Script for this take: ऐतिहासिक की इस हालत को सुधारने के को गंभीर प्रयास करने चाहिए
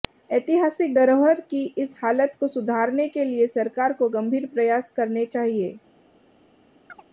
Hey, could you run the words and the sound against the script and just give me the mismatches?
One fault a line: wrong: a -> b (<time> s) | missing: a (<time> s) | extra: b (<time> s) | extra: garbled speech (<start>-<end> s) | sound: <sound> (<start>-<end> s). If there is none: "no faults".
extra: धरोहर (0.9 s)
extra: लिए सरकार (3.2 s)
sound: chirp (6.9-7.0 s)